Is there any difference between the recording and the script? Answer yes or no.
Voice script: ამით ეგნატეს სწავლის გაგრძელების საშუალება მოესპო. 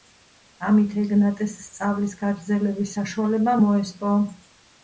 no